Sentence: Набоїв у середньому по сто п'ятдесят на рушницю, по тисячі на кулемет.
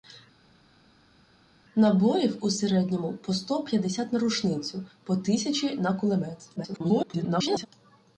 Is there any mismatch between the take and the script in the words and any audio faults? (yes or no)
yes